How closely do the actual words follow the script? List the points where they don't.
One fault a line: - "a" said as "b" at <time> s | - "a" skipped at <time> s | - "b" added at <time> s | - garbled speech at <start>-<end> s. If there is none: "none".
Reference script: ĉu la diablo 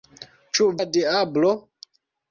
none